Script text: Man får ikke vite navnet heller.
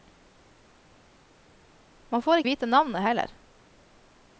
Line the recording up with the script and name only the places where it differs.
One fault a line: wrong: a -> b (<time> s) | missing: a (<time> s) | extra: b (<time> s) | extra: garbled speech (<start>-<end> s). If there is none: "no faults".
missing: ikke (2.4 s)